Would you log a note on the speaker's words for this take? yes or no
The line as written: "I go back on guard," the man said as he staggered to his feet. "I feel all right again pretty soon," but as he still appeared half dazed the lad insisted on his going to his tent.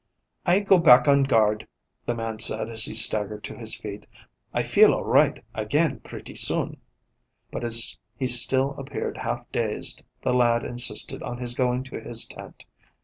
no